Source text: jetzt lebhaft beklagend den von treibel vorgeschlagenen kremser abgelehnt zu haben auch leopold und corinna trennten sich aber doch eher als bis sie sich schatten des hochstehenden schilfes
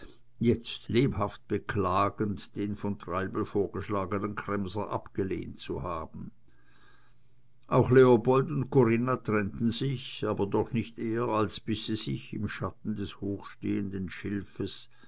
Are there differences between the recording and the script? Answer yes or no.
yes